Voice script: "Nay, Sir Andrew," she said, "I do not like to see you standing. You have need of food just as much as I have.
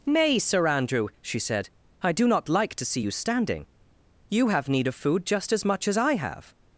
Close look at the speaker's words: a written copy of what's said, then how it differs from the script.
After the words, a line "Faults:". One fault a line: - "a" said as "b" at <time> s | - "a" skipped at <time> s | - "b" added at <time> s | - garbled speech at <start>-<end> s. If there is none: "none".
"Nay, Sir Andrew," she said, "I do not like to see you standing. You have need of food just as much as I have.
Faults:
none